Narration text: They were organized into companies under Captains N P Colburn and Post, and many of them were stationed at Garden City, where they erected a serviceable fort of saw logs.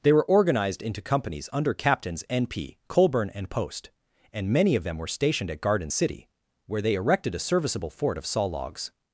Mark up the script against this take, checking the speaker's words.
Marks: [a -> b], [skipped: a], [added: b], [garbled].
They were organized into companies under Captains N P Colburn and Post, and many of them were stationed at Garden City, where they erected a serviceable fort of saw logs.